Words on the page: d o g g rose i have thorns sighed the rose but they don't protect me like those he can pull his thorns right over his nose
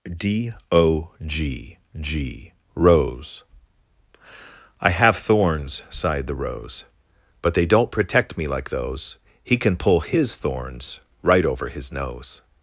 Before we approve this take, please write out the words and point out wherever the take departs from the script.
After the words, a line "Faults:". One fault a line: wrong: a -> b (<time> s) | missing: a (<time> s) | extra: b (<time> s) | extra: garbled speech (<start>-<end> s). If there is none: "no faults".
d o g g rose i have thorns sighed the rose but they don't protect me like those he can pull his thorns right over his nose
Faults:
no faults